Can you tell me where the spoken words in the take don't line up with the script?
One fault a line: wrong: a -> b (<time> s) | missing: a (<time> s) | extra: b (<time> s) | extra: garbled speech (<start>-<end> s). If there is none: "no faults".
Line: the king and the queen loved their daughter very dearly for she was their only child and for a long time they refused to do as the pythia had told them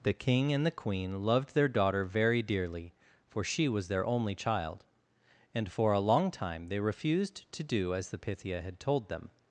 no faults